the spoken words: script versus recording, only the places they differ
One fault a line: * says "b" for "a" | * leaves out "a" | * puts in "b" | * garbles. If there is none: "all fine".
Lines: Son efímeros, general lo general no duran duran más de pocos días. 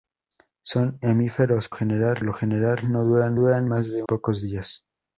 all fine